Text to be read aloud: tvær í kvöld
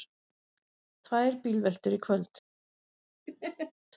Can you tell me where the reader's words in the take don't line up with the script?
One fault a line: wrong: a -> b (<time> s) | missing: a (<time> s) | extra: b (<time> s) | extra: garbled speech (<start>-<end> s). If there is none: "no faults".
extra: bílveltur (1.4 s)